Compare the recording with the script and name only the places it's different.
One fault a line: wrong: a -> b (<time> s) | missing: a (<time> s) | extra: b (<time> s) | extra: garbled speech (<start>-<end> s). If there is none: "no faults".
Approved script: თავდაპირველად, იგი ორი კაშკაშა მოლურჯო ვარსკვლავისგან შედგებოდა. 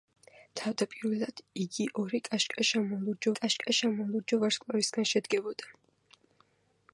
extra: კაშკაშა მოლურჯო (3.4 s)